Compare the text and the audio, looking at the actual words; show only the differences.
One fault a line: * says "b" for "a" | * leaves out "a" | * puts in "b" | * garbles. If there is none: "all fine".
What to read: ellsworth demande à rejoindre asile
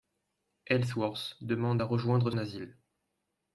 all fine